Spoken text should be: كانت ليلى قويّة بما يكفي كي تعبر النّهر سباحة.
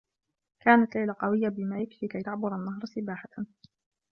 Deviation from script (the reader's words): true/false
false